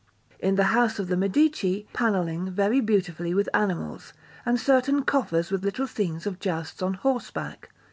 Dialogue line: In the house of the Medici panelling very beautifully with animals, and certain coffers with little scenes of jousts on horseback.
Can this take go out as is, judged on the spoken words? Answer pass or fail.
pass